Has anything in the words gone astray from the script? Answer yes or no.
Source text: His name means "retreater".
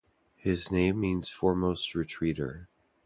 yes